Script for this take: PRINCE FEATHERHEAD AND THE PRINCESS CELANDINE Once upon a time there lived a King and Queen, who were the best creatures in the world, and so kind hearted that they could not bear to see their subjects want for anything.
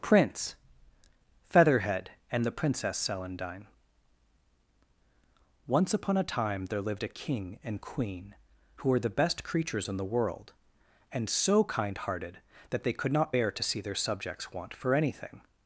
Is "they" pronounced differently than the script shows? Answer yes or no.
no